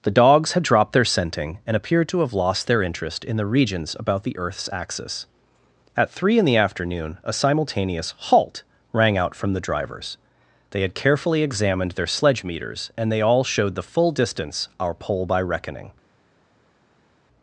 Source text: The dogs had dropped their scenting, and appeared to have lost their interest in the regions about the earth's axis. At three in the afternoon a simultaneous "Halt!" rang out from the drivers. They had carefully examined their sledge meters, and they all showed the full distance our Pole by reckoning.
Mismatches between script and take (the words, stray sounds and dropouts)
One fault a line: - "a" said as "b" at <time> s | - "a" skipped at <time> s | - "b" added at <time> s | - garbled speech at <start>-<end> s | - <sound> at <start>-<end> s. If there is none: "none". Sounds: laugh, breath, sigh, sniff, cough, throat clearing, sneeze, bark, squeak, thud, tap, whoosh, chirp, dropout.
none